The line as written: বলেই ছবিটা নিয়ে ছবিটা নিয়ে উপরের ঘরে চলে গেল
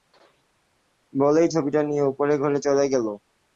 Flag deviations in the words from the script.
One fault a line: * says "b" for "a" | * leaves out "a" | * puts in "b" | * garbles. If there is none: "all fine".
* leaves out "ছবিটা নিয়ে"